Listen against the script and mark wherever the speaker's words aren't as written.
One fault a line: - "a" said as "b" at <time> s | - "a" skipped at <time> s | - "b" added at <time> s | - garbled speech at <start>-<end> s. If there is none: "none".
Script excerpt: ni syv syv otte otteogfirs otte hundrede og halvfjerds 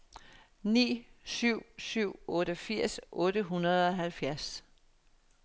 - "otte" skipped at 2.1 s